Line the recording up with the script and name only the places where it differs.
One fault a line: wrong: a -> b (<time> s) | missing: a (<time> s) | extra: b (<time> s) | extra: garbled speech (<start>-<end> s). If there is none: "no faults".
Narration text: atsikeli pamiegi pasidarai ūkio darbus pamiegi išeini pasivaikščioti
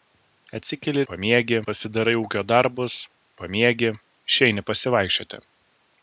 no faults